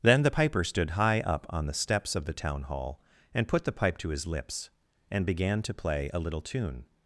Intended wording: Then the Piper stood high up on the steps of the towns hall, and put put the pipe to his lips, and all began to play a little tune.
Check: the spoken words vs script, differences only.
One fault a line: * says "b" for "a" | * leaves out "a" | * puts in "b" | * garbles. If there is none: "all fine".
* says "town" for "towns"
* leaves out "put"
* leaves out "all"